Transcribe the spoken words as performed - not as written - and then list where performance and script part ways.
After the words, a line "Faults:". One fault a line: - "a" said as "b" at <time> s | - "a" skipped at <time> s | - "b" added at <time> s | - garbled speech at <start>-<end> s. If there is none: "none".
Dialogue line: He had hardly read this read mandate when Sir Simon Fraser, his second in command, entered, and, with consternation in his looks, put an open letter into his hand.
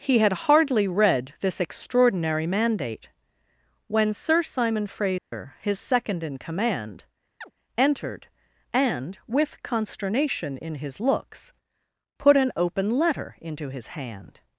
He had hardly read this extraordinary mandate when Sir Simon Fraser, his second in command, entered, and, with consternation in his looks, put an open letter into his hand.
Faults:
- "read" said as "extraordinary" at 1.6 s